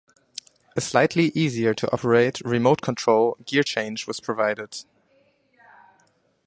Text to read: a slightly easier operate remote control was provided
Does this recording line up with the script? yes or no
no